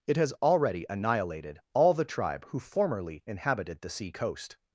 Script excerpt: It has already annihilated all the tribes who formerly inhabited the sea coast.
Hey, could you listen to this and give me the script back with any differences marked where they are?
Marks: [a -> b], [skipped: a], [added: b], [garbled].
It has already annihilated all the [tribes -> tribe] who formerly inhabited the sea coast.